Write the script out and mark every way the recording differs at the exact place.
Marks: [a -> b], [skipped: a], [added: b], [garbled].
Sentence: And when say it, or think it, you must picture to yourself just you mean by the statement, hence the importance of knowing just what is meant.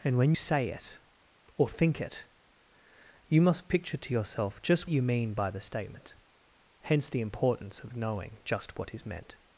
And when say it, or think it, you must picture to yourself just you mean by the statement, hence the importance of knowing just what is meant.